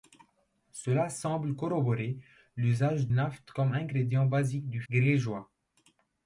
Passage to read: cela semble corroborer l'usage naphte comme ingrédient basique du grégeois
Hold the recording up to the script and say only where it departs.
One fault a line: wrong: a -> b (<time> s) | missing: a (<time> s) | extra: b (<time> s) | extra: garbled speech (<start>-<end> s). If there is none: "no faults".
no faults